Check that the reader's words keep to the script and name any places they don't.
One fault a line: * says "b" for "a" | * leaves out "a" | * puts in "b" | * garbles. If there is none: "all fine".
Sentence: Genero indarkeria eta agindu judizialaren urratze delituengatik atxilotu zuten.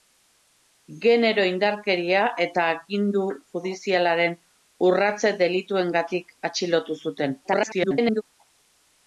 * garbles